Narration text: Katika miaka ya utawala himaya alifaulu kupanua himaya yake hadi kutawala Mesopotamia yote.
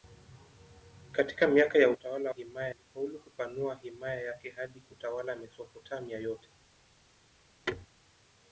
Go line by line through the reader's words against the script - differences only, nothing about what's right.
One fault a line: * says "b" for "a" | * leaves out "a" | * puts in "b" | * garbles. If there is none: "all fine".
all fine